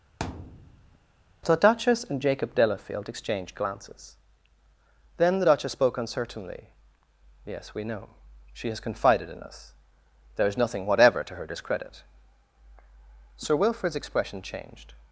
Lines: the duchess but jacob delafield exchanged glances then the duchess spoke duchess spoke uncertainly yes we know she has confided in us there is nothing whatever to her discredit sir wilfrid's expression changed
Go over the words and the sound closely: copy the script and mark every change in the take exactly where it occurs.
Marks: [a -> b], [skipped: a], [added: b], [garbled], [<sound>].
[thud] the duchess [but -> and] jacob delafield exchanged glances then the duchess spoke [skipped: duchess spoke] uncertainly yes we know she has confided in us there is nothing whatever to her discredit sir wilfrid's expression changed